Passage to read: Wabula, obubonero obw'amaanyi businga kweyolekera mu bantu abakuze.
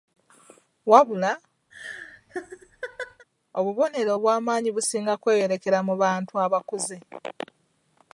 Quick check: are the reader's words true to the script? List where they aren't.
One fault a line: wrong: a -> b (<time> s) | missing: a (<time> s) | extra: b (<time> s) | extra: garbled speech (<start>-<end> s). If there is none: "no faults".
no faults